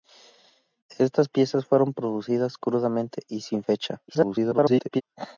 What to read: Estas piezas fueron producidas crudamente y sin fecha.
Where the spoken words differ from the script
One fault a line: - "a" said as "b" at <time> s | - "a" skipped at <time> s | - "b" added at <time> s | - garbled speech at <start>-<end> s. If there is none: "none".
- garbled speech at 4.1-5.0 s